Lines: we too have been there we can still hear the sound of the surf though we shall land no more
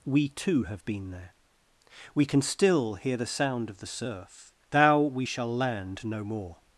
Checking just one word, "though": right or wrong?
wrong